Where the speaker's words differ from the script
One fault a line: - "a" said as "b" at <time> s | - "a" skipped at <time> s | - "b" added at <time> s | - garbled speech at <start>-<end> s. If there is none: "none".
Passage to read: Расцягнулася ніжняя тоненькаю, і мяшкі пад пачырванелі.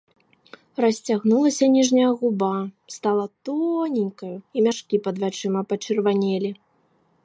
- "губа стала" added at 2.2 s
- "вачыма" added at 5.3 s